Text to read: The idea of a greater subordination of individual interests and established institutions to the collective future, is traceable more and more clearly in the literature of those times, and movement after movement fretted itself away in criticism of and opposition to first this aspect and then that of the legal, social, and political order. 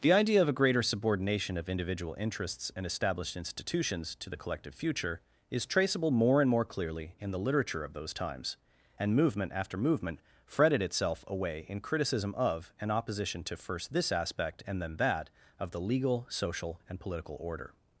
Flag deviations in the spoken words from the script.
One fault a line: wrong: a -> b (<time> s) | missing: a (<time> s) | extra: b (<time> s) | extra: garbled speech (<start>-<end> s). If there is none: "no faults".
no faults